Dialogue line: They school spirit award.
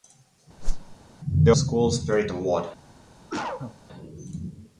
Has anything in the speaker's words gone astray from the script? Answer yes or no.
no